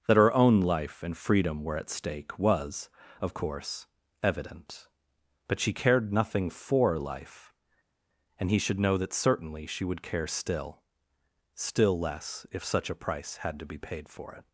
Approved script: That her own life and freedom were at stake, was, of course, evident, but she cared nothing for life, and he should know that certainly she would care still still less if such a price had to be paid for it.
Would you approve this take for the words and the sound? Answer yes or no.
yes